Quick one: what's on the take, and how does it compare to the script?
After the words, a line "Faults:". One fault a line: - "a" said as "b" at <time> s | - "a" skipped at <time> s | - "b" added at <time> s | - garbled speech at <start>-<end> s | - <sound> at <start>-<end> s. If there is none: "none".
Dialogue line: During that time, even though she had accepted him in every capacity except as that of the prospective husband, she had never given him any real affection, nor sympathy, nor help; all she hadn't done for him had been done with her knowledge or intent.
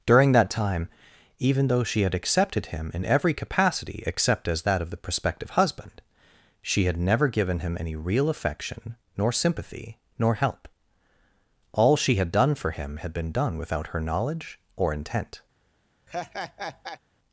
During that time, even though she had accepted him in every capacity except as that of the prospective husband, she had never given him any real affection, nor sympathy, nor help; all she had done for him had been done without her knowledge or intent.
Faults:
- "hadn't" said as "had" at 12.2 s
- "with" said as "without" at 13.6 s
- laugh at 16.1-17.0 s